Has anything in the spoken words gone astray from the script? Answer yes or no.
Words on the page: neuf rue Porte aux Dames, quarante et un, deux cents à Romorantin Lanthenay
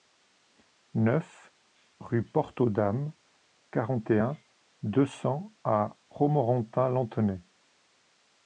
no